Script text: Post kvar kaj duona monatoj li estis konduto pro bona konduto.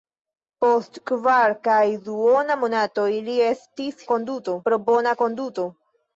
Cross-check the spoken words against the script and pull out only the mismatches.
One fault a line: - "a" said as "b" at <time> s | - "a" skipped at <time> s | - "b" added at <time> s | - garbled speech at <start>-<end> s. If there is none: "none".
none